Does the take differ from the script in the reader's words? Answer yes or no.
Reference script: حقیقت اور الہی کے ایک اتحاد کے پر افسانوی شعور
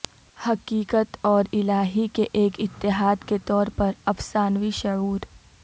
yes